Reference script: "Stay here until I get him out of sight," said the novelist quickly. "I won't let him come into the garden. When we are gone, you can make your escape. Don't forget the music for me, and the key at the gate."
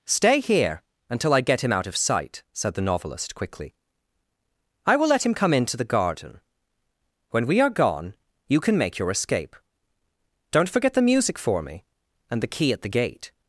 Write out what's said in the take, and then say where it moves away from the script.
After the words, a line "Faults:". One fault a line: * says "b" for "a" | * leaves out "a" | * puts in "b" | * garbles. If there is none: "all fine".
"Stay here until I get him out of sight," said the novelist quickly. "I will let him come into the garden. When we are gone, you can make your escape. Don't forget the music for me, and the key at the gate."
Faults:
* says "will" for "won't"